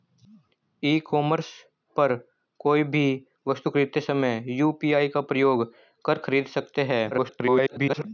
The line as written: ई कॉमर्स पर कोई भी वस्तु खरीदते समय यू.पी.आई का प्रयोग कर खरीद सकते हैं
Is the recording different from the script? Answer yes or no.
yes